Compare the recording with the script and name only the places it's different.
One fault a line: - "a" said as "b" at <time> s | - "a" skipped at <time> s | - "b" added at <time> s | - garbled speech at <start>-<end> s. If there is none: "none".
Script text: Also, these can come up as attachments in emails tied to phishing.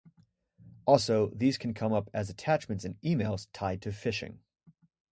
none